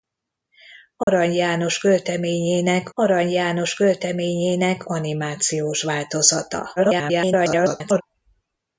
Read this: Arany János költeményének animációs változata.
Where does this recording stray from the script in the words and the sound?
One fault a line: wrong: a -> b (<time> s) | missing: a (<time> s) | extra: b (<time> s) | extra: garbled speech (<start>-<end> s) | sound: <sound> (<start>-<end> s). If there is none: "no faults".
sound: dropout (1.0-1.1 s)
extra: arany János költeményének (2.9 s)
extra: garbled speech (6.8-8.0 s)